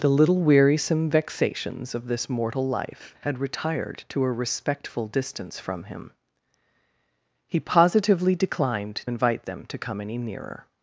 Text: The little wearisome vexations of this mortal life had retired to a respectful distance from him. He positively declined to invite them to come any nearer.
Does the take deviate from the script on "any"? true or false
false